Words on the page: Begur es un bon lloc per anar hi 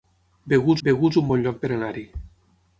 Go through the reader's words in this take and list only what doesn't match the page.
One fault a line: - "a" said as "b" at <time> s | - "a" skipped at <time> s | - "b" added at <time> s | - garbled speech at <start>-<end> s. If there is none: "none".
- "begur" added at 0.9 s